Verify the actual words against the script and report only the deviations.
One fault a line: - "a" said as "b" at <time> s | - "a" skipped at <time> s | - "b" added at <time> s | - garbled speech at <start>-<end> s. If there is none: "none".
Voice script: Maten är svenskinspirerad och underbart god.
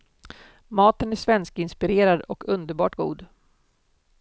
none